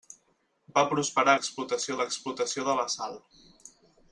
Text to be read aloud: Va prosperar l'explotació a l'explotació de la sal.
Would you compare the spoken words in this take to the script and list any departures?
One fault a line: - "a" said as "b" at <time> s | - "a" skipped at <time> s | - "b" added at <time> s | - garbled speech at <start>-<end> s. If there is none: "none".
none